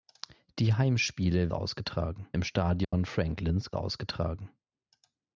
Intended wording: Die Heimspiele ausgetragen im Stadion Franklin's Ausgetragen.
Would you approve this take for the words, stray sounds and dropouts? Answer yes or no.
no